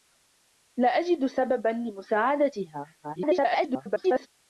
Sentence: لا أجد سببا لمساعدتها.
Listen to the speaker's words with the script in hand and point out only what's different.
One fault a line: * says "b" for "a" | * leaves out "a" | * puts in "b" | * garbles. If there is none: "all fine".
* garbles